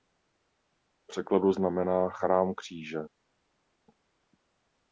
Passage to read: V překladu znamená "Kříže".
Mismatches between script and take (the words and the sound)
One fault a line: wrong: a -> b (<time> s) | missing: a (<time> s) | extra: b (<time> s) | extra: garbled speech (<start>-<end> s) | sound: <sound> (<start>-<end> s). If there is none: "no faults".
extra: Chrám (2.1 s)